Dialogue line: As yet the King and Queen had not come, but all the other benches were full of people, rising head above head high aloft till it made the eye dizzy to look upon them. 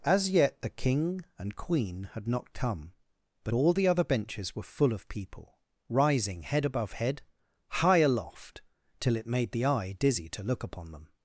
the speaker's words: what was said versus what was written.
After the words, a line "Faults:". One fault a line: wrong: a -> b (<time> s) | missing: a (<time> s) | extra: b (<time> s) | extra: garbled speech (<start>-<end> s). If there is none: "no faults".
As yet the King and Queen had not come, but all the other benches were full of people, rising head above head high aloft till it made the eye dizzy to look upon them.
Faults:
no faults